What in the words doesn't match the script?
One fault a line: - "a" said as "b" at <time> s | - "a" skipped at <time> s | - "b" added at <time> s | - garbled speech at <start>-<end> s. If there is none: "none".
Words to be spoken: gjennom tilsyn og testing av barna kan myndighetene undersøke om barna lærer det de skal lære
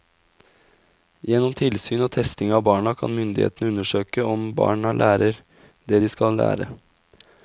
none